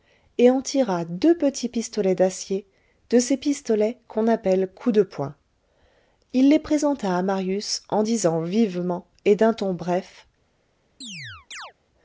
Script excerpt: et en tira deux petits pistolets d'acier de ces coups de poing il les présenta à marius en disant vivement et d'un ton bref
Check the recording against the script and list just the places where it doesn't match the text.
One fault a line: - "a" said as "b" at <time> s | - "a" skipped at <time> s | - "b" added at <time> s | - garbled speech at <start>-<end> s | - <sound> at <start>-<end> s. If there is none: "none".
- "pistolets qu'on appelle" added at 3.4 s
- chirp at 11.0-11.7 s